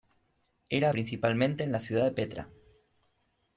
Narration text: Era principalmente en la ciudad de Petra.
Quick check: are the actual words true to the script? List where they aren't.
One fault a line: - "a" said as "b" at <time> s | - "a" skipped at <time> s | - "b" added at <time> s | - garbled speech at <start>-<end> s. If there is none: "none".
none